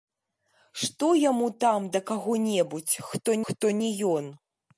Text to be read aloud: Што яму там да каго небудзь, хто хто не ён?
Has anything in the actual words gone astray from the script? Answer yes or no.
no